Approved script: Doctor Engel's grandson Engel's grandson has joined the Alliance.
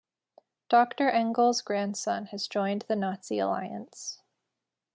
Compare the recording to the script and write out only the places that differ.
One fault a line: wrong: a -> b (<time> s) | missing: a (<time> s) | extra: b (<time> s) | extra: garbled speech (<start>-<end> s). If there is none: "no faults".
missing: Engel's grandson (2.2 s)
extra: Nazi (3.0 s)